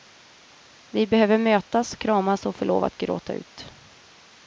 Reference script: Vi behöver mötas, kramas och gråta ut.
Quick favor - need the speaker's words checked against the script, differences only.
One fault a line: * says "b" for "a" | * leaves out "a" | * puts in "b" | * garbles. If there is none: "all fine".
* puts in "få lov att"